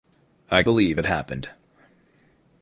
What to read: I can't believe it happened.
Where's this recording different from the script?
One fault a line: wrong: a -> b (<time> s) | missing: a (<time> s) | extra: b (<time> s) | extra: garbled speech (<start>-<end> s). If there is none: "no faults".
missing: can't (0.6 s)